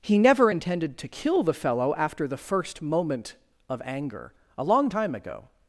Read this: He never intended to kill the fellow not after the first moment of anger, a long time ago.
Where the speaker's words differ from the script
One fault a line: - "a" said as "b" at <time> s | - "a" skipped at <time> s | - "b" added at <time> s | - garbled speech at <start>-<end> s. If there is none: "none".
- "not" skipped at 1.9 s